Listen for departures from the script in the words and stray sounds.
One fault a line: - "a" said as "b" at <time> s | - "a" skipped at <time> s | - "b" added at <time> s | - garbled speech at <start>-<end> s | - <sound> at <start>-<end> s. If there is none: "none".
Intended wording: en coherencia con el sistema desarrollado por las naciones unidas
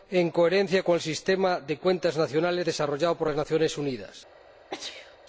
- "de cuentas nacionales" added at 1.6 s
- sneeze at 4.7-5.2 s